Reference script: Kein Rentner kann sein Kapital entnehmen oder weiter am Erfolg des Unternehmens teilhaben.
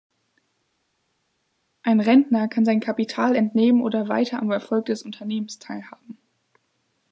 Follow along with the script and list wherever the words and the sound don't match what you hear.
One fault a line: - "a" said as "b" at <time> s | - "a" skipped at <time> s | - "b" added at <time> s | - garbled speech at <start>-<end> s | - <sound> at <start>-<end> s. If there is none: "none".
- "Kein" said as "Ein" at 1.8 s